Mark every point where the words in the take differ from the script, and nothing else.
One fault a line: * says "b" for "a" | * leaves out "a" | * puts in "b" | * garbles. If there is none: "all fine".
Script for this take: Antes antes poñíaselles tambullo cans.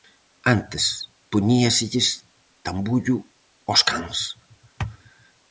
* leaves out "antes"
* puts in "aos"